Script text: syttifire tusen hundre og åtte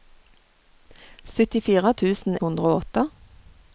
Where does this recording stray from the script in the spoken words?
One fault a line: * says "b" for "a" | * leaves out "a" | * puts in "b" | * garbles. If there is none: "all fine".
all fine